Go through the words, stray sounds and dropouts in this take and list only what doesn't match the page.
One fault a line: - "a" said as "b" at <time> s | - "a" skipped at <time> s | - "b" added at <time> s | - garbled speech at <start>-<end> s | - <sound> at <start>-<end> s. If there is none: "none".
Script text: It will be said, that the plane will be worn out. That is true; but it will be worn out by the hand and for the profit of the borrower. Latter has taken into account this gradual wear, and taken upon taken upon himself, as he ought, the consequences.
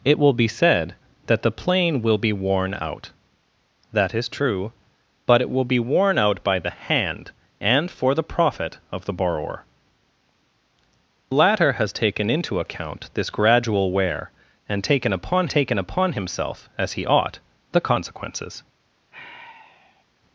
- sigh at 19.1-20.0 s